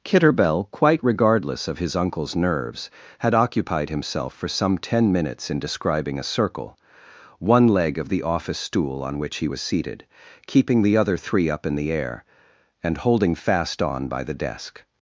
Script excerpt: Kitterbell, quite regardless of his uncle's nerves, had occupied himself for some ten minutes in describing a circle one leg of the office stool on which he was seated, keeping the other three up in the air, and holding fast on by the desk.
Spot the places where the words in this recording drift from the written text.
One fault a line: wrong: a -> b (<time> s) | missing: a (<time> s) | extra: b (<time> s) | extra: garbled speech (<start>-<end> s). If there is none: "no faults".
no faults